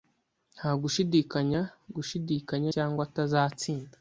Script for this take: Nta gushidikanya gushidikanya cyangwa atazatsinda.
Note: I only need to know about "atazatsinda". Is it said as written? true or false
true